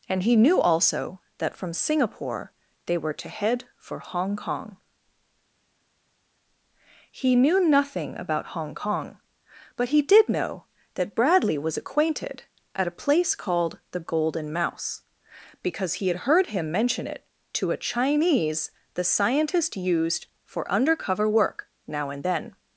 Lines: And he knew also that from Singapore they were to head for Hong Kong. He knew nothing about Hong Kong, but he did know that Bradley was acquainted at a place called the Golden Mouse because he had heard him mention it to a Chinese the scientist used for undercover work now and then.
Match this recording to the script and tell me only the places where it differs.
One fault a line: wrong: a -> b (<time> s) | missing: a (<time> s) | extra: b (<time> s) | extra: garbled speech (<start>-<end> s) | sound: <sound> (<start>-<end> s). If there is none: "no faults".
no faults